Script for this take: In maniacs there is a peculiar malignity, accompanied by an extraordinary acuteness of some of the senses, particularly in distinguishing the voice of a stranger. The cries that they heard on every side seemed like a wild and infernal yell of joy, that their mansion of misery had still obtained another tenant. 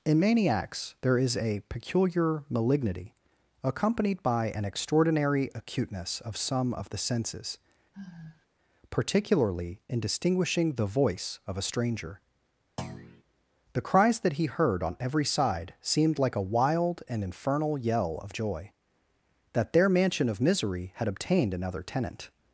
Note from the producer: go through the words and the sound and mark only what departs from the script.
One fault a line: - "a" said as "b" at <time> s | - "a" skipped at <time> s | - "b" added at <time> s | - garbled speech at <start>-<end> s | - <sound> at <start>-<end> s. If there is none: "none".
- sigh at 7.9-8.5 s
- thud at 12.8-13.2 s
- "they" said as "he" at 14.3 s
- "still" skipped at 21.1 s